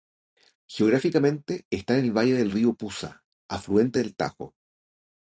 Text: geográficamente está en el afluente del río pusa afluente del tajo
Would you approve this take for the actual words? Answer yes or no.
no